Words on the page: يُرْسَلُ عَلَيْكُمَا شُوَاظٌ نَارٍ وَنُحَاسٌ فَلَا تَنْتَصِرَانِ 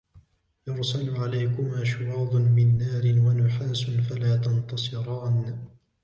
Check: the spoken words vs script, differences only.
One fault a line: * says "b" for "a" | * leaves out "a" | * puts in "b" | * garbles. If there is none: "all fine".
* puts in "مِنْ"